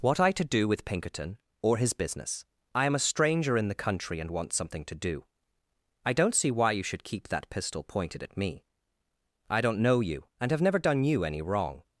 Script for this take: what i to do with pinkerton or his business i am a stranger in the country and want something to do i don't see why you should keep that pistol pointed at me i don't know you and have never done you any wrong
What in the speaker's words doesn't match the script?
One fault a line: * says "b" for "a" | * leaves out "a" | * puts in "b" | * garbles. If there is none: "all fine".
all fine